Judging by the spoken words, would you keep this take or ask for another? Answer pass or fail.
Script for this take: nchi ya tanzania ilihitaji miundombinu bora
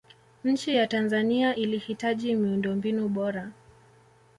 pass